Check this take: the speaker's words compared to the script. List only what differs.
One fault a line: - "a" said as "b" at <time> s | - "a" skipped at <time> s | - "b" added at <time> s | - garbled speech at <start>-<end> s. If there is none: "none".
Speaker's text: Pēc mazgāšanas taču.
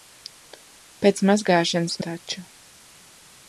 none